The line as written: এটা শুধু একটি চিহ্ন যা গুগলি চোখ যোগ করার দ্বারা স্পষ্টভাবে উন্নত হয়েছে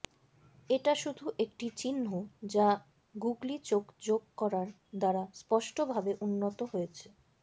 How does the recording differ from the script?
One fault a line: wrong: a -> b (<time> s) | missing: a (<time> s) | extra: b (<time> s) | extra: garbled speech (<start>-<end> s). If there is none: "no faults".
no faults